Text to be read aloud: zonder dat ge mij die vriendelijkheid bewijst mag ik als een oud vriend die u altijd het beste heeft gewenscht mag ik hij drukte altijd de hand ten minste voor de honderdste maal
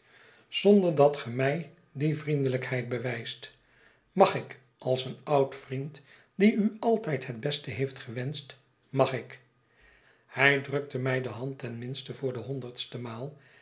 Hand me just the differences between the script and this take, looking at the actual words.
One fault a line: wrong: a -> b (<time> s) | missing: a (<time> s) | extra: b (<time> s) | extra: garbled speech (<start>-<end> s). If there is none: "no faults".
wrong: altijd -> mij (11.0 s)